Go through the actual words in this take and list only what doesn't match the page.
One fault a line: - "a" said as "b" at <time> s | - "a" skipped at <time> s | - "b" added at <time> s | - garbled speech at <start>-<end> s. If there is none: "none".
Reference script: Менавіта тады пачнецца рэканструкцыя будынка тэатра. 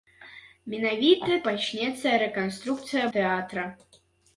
- "тады" skipped at 1.4 s
- "будынка" skipped at 3.0 s